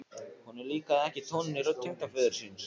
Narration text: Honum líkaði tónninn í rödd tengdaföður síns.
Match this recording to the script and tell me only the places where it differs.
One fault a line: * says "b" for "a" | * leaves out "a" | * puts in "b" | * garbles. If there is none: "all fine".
* puts in "ekki"